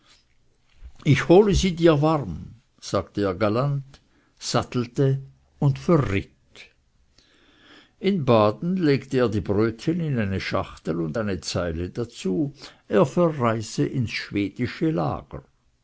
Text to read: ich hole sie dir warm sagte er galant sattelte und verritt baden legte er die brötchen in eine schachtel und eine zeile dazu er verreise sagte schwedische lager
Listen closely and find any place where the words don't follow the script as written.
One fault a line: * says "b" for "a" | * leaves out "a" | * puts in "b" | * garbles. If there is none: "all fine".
* puts in "in"
* says "ins" for "sagte"